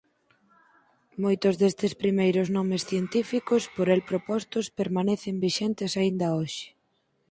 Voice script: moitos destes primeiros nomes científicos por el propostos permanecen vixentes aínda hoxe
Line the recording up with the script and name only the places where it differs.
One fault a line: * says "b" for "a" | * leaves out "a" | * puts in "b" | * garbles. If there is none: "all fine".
all fine